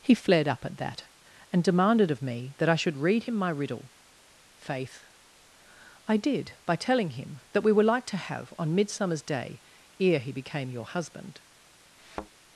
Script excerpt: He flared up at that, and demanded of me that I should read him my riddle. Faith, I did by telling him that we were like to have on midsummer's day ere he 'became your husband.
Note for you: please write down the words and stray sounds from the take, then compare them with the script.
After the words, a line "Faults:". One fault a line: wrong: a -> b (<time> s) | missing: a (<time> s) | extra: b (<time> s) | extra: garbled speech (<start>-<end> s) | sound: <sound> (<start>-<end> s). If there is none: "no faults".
He flared up at that, and demanded of me that I should read him my riddle. Faith, I did by telling him that we were like to have on midsummer's day ere he 'became your husband.
Faults:
sound: thud (12.0-12.3 s)